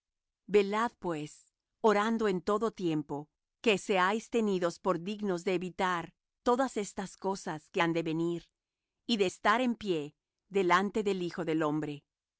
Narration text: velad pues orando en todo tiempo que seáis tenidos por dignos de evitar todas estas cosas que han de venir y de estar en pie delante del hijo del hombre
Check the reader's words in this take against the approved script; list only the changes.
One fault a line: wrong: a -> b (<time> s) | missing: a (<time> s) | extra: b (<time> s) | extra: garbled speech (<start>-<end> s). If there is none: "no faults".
no faults